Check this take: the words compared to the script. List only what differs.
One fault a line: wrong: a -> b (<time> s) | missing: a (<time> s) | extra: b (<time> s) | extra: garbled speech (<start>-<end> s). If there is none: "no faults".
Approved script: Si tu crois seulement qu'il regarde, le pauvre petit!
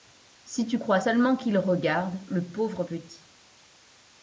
no faults